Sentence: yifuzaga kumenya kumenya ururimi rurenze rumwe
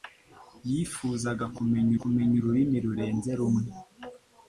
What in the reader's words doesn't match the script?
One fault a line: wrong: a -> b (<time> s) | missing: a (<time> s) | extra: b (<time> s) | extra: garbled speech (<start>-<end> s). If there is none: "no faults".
no faults